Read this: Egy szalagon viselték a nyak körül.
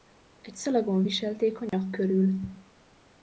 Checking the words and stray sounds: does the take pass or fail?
fail